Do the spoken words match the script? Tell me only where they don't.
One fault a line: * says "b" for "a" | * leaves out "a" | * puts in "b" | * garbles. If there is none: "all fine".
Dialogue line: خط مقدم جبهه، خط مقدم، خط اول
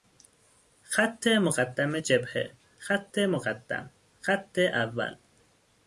all fine